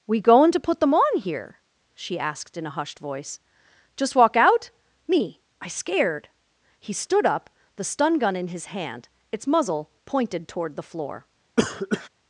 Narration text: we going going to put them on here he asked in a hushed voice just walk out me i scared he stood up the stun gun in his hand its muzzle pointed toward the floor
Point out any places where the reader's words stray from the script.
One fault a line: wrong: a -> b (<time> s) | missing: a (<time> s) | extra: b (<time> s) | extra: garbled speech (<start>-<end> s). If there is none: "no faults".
missing: going (0.5 s)
wrong: he -> she (1.9 s)